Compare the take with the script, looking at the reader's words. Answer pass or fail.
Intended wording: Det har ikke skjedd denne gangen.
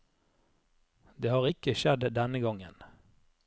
pass